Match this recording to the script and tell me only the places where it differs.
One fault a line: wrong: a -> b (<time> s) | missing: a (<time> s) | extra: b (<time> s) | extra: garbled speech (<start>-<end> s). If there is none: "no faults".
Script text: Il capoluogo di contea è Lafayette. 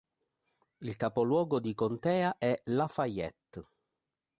no faults